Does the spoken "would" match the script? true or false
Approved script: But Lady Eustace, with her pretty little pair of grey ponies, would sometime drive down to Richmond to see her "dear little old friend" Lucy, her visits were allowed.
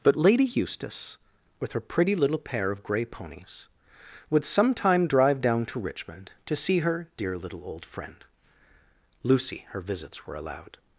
true